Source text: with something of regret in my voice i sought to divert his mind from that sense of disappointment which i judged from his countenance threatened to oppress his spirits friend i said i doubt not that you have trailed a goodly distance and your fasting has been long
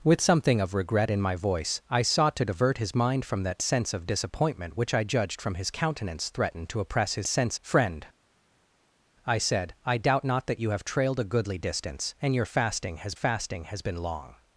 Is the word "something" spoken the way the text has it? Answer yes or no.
yes